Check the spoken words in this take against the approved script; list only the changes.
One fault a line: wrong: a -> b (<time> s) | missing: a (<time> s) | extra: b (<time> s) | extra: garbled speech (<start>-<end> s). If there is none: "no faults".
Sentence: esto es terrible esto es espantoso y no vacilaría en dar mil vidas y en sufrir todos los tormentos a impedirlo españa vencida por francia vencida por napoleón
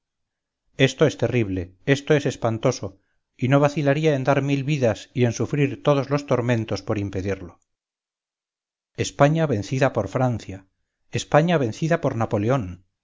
wrong: a -> por (6.8 s)
extra: españa (11.1 s)